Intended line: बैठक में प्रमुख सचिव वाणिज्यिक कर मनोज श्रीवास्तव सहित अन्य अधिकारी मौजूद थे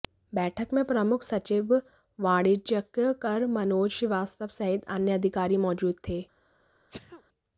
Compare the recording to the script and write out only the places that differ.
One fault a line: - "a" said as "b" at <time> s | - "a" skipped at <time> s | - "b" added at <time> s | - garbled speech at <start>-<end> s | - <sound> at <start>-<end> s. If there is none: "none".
- sneeze at 6.9-7.2 s